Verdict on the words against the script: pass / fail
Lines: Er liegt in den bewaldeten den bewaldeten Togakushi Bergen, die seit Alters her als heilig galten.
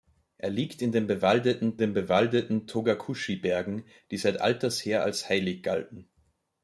pass